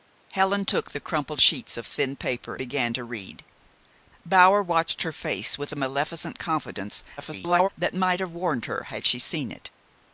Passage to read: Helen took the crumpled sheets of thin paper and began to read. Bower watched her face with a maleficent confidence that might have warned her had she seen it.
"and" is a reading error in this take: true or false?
true